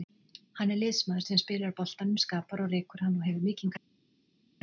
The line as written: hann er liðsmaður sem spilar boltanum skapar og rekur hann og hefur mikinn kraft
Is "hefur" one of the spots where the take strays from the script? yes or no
no